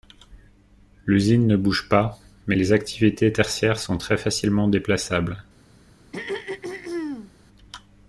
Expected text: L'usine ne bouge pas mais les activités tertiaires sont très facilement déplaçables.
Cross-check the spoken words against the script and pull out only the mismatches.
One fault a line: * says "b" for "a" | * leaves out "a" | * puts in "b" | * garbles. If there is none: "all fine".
all fine